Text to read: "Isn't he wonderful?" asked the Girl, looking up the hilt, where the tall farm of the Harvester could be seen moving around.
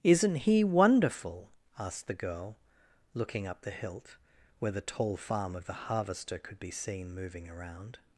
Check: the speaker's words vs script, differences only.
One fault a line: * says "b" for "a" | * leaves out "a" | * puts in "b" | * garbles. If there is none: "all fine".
all fine